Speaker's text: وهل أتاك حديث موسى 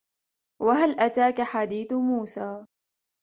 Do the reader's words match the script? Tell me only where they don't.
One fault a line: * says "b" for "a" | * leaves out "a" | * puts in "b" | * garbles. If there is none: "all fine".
all fine